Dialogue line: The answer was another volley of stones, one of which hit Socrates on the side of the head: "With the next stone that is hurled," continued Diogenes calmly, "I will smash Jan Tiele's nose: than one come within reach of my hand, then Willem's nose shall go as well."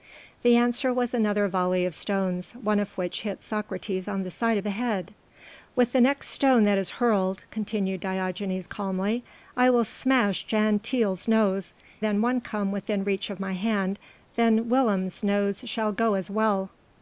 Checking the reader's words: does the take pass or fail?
pass